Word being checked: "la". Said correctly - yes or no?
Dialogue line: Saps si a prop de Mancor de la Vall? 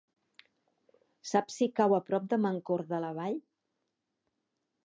yes